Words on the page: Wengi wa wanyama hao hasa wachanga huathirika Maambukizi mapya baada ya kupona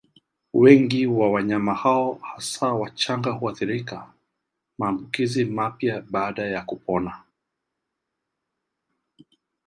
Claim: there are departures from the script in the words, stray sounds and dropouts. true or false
false